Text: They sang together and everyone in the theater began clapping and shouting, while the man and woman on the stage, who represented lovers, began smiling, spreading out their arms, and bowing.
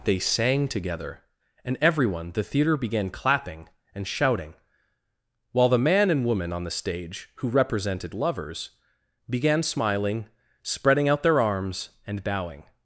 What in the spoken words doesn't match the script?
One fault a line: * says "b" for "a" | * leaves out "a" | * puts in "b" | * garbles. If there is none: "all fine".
* leaves out "in"